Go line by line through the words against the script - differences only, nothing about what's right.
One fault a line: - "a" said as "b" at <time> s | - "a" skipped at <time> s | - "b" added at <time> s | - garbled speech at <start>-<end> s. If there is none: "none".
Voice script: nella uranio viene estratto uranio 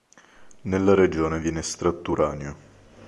- "uranio" said as "regione" at 0.9 s